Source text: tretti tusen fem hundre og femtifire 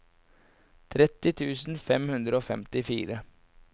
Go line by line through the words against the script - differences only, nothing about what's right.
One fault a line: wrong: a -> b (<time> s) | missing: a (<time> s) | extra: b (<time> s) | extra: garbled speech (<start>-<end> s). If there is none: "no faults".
no faults